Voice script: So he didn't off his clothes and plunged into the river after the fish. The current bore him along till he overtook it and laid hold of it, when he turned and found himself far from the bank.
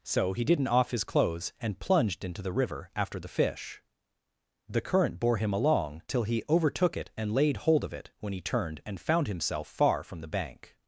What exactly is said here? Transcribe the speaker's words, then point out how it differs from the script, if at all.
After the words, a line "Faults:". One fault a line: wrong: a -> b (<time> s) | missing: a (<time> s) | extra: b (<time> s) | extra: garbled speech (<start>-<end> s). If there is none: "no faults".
So he didn't off his clothes and plunged into the river after the fish. The current bore him along till he overtook it and laid hold of it, when he turned and found himself far from the bank.
Faults:
no faults